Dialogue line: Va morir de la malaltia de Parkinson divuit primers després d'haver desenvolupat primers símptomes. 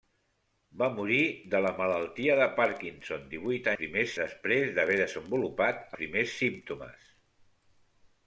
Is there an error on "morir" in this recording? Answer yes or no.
no